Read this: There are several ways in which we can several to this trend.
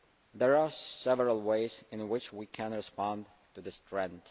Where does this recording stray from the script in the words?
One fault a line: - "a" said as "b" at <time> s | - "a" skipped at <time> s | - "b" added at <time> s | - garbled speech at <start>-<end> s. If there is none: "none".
- "several" said as "respond" at 2.7 s